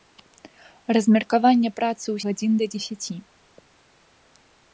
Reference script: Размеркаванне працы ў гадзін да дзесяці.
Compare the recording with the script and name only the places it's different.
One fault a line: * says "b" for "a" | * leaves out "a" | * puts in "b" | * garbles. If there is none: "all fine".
all fine